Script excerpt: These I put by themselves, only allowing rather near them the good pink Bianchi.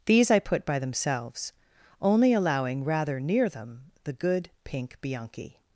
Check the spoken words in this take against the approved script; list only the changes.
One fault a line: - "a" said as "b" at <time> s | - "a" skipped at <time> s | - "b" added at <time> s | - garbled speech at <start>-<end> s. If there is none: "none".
none